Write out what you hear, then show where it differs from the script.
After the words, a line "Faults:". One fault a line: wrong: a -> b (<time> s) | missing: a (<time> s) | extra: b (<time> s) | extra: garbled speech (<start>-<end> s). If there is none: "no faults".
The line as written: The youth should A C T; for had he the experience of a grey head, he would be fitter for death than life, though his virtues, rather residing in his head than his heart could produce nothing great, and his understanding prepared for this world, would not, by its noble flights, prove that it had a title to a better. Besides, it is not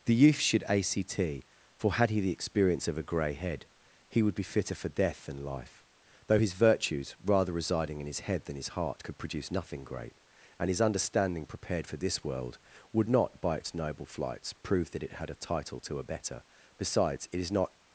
The youth should A C T; for had he the experience of a grey head, he would be fitter for death than life, though his virtues, rather residing in his head than his heart could produce nothing great, and his understanding prepared for this world, would not, by its noble flights, prove that it had a title to a better. Besides, it is not
Faults:
no faults